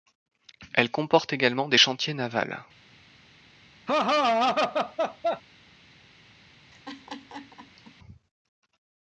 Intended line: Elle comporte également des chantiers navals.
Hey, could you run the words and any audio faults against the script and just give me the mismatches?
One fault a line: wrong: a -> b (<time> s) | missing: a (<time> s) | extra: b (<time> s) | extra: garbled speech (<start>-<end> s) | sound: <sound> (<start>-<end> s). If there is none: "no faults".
sound: laugh (3.9-5.4 s)
sound: laugh (6.7-8.0 s)